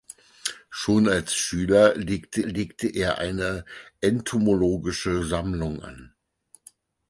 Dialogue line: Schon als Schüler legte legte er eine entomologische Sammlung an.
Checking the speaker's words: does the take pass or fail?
pass